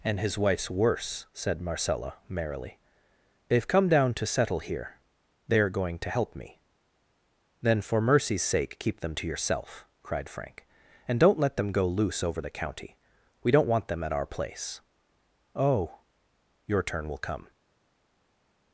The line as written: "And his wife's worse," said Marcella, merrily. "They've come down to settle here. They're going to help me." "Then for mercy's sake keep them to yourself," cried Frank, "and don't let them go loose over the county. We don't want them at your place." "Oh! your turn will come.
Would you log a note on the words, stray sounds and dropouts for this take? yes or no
yes